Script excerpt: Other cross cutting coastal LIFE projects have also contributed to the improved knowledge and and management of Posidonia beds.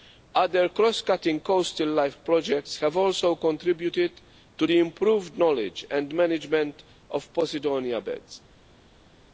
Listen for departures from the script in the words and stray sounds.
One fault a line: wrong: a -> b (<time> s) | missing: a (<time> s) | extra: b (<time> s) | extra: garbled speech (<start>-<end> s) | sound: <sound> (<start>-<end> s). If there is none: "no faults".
missing: and (6.1 s)